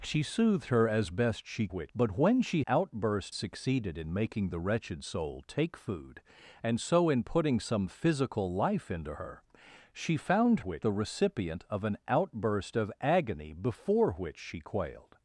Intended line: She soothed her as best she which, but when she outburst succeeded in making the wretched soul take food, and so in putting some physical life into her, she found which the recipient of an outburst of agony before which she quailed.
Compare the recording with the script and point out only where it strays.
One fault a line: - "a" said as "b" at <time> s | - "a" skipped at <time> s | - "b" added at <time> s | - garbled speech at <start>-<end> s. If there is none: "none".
none